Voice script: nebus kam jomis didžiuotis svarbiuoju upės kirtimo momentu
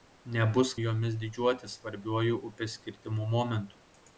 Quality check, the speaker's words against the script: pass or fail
fail